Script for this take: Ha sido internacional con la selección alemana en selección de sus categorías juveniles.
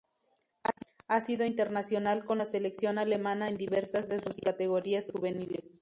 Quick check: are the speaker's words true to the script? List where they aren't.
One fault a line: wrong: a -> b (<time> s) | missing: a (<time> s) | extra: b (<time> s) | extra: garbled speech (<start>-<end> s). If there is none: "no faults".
wrong: selección -> diversas (3.6 s)